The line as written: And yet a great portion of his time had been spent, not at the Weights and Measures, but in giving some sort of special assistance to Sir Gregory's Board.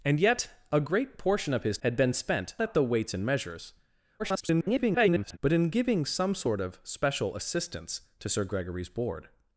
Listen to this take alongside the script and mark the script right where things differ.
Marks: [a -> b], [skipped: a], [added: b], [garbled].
And yet a great portion of his [skipped: time] had been spent, [skipped: not] at the Weights and Measures, [garbled] but in giving some sort of special assistance to Sir Gregory's Board.